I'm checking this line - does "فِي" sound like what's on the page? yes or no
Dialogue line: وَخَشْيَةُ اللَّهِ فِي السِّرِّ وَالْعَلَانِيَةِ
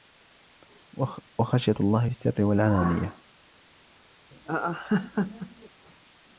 yes